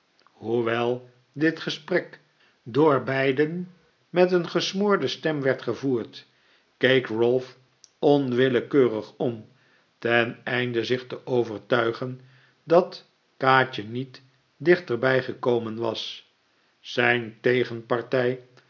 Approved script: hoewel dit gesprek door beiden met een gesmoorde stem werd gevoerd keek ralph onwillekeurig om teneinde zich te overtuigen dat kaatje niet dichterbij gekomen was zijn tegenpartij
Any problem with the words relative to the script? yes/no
no